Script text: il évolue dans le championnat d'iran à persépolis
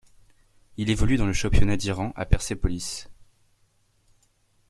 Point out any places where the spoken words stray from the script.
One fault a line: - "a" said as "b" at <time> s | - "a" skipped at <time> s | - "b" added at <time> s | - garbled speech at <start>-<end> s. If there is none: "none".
none